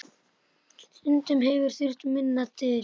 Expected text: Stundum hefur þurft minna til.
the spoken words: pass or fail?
pass